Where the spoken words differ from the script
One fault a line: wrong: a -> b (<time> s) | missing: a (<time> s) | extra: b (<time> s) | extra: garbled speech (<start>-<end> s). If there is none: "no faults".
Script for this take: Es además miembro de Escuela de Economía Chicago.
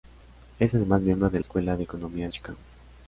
no faults